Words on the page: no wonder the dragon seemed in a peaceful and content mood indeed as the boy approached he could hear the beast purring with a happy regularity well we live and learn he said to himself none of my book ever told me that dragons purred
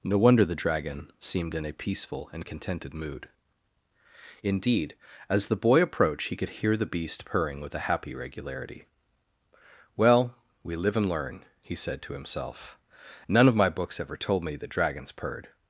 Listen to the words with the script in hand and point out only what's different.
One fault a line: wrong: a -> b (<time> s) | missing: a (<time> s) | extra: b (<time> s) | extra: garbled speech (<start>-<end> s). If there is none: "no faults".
wrong: content -> contented (2.4 s)
wrong: book -> books (13.7 s)